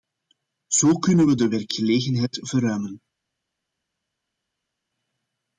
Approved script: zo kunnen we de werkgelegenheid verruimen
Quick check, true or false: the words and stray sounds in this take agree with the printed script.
true